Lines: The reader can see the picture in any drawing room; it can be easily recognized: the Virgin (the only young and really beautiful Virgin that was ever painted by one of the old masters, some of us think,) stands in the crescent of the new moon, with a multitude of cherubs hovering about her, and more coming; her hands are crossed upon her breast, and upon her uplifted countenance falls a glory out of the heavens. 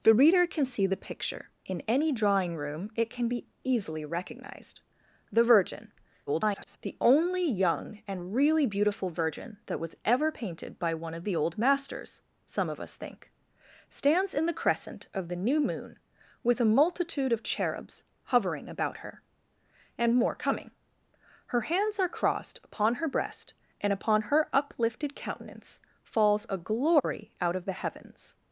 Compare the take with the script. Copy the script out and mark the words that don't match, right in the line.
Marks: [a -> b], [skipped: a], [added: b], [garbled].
The reader can see the picture in any drawing room; it can be easily recognized: the Virgin [garbled] (the only young and really beautiful Virgin that was ever painted by one of the old masters, some of us think,) stands in the crescent of the new moon, with a multitude of cherubs hovering about her, and more coming; her hands are crossed upon her breast, and upon her uplifted countenance falls a glory out of the heavens.